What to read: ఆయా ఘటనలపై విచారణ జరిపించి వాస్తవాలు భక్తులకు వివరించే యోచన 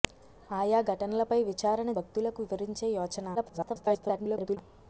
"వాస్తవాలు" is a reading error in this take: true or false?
true